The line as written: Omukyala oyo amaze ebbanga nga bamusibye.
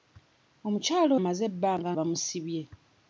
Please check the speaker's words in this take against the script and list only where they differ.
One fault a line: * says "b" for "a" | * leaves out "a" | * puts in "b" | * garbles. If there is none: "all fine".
* leaves out "oyo"
* leaves out "nga"